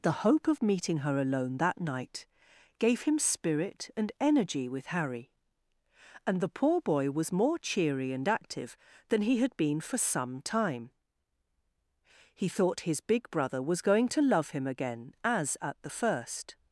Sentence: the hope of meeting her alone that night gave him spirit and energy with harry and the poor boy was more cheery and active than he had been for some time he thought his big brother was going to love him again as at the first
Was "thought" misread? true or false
false